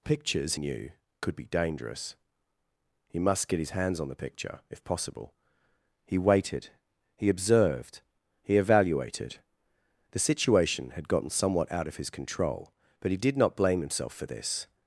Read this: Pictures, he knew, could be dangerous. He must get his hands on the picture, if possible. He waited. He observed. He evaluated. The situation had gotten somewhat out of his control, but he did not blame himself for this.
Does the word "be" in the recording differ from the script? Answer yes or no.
no